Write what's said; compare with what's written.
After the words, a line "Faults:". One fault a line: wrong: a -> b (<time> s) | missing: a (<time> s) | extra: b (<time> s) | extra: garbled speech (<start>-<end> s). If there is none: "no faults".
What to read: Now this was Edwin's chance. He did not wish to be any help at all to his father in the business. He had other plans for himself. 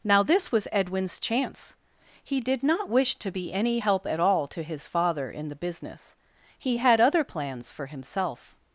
Now this was Edwin's chance. He did not wish to be any help at all to his father in the business. He had other plans for himself.
Faults:
no faults